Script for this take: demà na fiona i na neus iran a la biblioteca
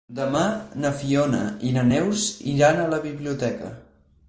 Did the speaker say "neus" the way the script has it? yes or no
yes